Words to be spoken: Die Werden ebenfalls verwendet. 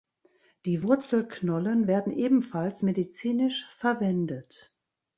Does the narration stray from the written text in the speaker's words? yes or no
yes